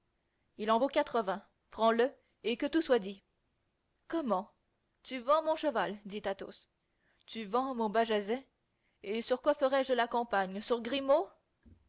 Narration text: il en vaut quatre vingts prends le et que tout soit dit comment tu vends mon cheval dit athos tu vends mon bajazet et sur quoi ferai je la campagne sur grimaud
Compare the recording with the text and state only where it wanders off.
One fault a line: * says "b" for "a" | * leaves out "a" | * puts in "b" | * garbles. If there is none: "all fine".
all fine